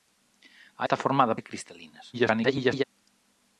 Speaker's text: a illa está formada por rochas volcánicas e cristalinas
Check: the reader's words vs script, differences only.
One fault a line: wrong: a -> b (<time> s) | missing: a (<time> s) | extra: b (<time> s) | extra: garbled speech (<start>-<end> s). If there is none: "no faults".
missing: illa (0.8 s)
missing: por rochas volcánicas (1.3 s)
extra: garbled speech (2.1-2.8 s)